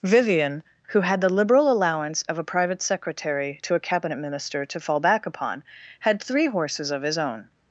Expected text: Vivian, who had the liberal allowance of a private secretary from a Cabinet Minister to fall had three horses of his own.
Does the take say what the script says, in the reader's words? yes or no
no